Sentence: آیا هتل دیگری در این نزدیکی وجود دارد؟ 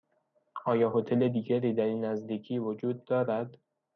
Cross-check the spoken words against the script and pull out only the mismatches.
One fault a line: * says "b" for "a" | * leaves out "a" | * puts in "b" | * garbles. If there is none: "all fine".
all fine